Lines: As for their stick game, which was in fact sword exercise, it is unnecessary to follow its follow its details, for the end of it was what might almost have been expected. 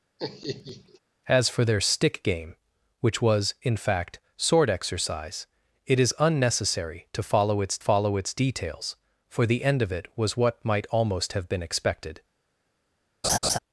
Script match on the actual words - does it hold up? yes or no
yes